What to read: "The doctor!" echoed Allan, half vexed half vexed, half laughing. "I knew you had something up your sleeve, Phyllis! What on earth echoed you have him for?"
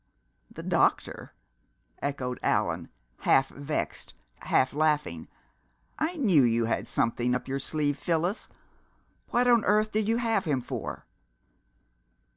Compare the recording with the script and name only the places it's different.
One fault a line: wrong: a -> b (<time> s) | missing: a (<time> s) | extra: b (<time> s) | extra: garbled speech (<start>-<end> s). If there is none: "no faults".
missing: vexed half (4.7 s)
wrong: echoed -> did (9.9 s)